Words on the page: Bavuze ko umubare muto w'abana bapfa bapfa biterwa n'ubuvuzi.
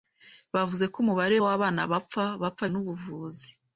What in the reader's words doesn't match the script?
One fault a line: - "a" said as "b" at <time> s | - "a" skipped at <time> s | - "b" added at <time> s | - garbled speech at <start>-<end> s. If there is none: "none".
- "muto" skipped at 1.4 s
- "biterwa" skipped at 2.6 s